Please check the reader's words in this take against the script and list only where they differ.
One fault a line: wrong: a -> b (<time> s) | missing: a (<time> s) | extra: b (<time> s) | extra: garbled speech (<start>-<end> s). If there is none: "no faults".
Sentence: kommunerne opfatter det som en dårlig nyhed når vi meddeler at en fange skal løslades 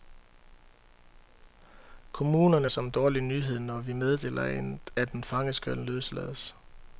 missing: opfatter det (2.7 s)